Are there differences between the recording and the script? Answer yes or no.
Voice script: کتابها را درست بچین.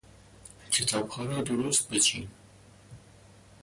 no